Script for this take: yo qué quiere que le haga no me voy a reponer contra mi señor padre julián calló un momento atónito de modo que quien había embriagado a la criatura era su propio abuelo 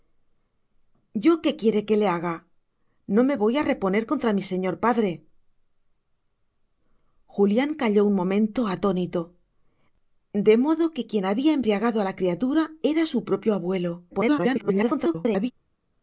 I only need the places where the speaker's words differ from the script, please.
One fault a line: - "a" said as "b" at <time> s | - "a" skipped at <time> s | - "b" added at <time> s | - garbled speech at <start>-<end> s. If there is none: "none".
- garbled speech at 14.1-15.5 s